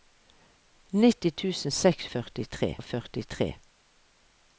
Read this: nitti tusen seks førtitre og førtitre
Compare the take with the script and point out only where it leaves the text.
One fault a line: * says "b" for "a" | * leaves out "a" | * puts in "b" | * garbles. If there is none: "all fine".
all fine